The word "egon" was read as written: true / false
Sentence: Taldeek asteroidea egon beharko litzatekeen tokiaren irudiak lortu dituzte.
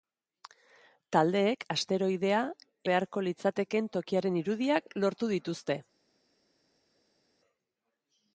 false